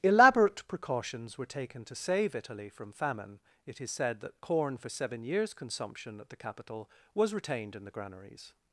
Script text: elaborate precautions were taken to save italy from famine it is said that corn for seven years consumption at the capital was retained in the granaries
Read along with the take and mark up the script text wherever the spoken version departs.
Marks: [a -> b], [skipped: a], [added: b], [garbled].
elaborate precautions were taken to save italy from famine it is said that corn for seven years consumption at the capital was retained in the granaries